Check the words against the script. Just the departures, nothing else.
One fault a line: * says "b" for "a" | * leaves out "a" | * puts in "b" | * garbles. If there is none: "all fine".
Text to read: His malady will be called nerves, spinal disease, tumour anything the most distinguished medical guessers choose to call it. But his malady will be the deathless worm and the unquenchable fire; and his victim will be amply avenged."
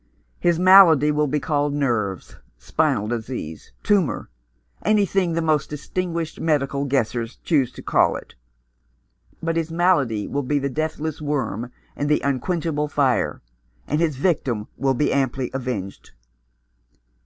all fine